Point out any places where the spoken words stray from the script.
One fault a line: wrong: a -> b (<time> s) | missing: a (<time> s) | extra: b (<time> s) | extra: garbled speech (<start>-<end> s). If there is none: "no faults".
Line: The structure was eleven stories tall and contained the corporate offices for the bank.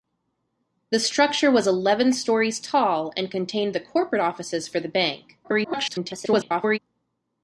extra: garbled speech (5.4-6.8 s)